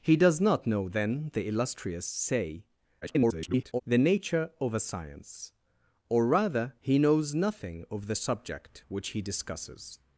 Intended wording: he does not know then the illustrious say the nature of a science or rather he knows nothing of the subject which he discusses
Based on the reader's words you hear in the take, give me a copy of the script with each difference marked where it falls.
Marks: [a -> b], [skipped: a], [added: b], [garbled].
he does not know then the illustrious say [garbled] the nature of a science or rather he knows nothing of the subject which he discusses